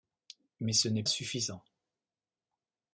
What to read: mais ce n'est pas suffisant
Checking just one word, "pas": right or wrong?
wrong